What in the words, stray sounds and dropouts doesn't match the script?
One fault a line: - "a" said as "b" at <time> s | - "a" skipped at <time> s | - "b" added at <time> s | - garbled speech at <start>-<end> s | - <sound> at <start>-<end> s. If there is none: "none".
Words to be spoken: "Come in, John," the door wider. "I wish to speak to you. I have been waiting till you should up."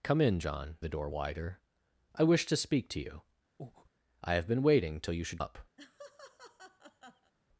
- breath at 3.6-3.9 s
- laugh at 5.8-7.3 s